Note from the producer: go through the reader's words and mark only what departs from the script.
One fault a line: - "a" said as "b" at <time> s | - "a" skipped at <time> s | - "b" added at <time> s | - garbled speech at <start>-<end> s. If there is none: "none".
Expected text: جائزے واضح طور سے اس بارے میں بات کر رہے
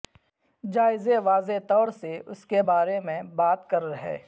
- "کے" added at 2.5 s